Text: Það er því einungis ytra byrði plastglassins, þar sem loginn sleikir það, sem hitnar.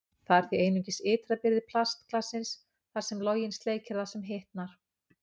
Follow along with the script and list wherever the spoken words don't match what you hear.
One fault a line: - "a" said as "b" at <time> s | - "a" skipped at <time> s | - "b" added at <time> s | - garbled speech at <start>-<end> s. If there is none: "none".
none